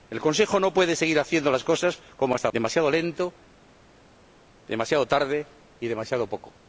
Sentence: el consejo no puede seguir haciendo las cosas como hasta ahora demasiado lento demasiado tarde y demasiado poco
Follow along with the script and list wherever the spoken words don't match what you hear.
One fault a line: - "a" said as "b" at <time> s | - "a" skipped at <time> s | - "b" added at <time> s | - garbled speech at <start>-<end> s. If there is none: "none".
- "ahora" skipped at 2.5 s